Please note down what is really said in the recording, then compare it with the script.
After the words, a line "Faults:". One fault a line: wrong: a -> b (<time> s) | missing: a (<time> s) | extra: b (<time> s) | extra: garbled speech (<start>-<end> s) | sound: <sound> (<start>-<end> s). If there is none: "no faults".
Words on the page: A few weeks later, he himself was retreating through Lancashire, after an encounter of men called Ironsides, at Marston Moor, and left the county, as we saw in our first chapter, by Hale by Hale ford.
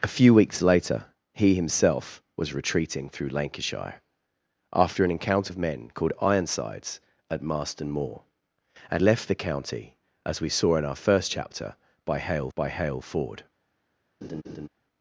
A few weeks later, he himself was retreating through Lancashire, after an encounter of men called Ironsides, at Marston Moor, and left the county, as we saw in our first chapter, by Hale by Hale ford.
Faults:
sound: laugh (14.2-14.7 s)